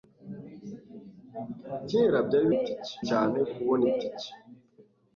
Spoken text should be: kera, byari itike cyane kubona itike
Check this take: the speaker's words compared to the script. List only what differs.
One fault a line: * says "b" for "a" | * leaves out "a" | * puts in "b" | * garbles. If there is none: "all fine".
all fine